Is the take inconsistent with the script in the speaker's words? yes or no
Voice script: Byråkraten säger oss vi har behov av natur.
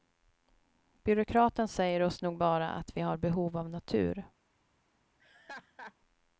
yes